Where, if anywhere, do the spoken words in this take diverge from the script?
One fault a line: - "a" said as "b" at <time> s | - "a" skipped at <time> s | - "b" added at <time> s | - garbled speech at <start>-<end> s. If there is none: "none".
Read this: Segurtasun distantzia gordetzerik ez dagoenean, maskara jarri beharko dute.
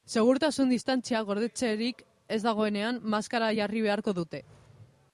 none